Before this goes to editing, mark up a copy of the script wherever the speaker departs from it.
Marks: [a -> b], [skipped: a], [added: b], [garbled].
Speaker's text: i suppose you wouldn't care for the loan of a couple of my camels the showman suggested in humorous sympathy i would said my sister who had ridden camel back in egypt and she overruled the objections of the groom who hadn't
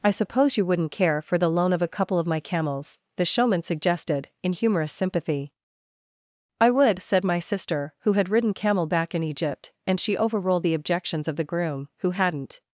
i suppose you wouldn't care for the loan of a couple of my camels the showman suggested in humorous sympathy i would said my sister who had ridden camel back in egypt and she overruled the objections of the groom who hadn't